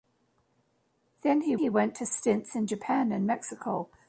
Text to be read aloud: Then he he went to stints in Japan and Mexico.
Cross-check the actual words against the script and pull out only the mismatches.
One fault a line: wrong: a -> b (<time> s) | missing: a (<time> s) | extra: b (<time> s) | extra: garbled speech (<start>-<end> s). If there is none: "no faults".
no faults